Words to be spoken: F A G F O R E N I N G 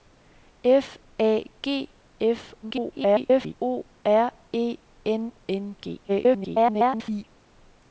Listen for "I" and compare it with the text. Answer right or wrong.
wrong